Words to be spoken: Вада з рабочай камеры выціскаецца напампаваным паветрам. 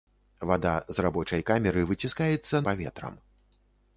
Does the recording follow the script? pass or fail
fail